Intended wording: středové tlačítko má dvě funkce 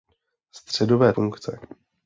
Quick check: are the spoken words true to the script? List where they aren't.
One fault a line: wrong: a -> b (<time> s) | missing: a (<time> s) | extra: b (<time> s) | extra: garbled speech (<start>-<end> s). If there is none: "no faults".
missing: tlačítko má dvě (1.1 s)